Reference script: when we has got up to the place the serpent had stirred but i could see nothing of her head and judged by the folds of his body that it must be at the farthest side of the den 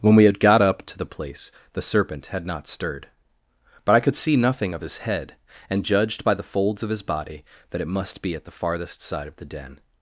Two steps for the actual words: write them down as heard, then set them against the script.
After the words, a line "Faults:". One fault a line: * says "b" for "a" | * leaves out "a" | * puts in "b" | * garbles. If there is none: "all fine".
when we had got up to the place the serpent had not stirred but i could see nothing of his head and judged by the folds of his body that it must be at the farthest side of the den
Faults:
* says "had" for "has"
* puts in "not"
* says "his" for "her"